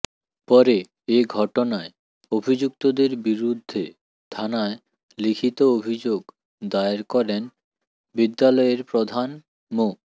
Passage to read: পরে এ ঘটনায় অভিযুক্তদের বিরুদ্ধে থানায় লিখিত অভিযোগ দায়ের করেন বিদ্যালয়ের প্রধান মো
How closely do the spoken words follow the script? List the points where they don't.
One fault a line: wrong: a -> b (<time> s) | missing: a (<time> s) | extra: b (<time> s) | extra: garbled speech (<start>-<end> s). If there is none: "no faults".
no faults